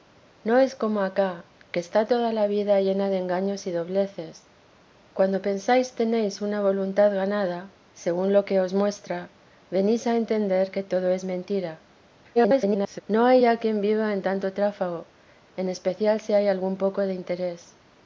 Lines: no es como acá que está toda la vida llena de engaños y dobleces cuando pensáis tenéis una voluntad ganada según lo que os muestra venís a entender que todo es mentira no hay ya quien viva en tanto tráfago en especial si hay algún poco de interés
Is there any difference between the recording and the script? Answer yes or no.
yes